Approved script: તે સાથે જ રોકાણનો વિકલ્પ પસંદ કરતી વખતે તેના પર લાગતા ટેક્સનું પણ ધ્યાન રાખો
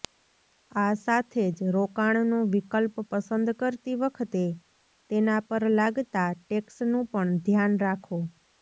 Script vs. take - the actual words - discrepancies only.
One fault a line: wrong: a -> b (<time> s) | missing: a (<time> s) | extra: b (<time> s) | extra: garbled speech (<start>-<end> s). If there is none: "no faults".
wrong: તે -> આ (0.7 s)